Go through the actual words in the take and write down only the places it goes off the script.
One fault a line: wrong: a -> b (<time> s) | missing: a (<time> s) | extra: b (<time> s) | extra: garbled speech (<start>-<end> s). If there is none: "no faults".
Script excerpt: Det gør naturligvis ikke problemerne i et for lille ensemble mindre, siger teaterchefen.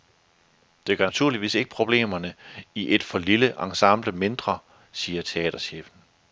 no faults